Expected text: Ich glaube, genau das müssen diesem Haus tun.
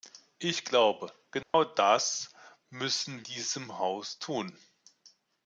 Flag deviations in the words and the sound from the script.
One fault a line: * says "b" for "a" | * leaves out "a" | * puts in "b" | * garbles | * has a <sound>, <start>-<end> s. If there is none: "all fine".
* has a dropout, 1.4-1.5 s